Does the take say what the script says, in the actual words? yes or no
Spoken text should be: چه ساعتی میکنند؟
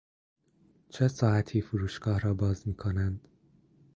no